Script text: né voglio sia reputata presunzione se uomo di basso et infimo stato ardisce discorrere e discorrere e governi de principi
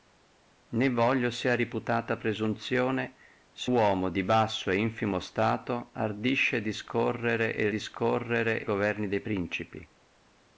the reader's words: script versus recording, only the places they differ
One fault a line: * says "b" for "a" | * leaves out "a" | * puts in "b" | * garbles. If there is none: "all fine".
all fine